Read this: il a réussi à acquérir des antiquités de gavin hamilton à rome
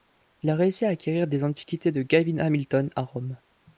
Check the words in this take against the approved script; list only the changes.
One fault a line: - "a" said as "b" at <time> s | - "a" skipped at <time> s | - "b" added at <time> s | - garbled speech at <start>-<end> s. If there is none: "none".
none